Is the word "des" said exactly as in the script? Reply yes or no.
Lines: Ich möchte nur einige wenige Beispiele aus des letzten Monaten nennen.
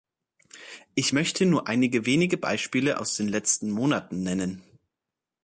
no